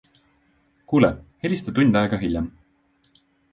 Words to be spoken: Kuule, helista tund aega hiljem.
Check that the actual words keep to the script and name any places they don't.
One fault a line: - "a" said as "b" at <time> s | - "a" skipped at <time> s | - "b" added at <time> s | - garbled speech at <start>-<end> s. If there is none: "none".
none